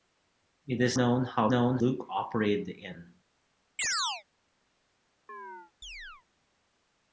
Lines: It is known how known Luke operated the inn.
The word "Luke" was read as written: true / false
true